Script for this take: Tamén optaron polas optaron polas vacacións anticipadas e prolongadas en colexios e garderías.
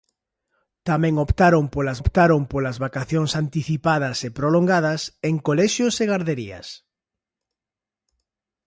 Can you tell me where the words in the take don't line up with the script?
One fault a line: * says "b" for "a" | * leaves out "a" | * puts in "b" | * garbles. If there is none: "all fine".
all fine